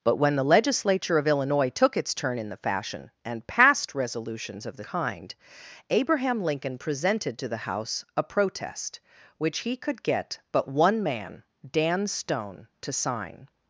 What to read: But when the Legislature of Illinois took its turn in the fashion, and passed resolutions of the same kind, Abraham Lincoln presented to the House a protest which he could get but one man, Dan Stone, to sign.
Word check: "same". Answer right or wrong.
wrong